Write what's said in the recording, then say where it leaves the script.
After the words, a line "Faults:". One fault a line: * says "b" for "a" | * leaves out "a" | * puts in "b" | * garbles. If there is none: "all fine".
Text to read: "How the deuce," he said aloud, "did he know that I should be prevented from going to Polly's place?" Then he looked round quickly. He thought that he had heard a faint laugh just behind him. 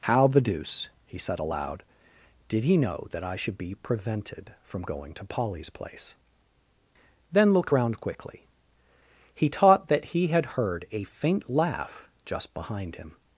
"How the deuce," he said aloud, "did he know that I should be prevented from going to Polly's place?" Then looked round quickly. He taught that he had heard a faint laugh just behind him.
Faults:
* leaves out "he"
* says "taught" for "thought"